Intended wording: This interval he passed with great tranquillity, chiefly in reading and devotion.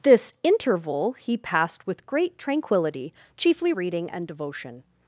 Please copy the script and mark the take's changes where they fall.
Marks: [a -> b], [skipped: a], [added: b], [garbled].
This interval he passed with great tranquillity, chiefly [skipped: in] reading and devotion.